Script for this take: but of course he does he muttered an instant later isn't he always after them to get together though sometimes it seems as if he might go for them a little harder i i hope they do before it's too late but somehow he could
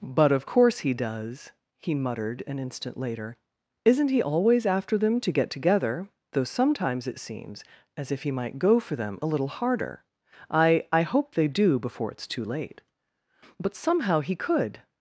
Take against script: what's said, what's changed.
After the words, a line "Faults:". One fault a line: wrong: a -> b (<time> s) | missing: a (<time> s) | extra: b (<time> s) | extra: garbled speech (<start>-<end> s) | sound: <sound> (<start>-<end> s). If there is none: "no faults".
but of course he does he muttered an instant later isn't he always after them to get together though sometimes it seems as if he might go for them a little harder i i hope they do before it's too late but somehow he could
Faults:
no faults